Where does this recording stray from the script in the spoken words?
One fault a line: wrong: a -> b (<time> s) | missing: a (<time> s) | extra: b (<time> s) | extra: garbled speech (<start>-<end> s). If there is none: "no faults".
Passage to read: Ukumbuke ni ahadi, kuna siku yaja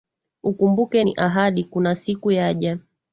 no faults